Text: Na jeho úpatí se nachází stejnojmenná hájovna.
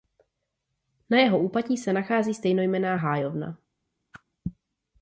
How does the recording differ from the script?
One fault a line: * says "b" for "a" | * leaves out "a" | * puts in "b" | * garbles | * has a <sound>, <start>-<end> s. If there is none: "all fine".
* has a whoosh, 4.1-4.2 s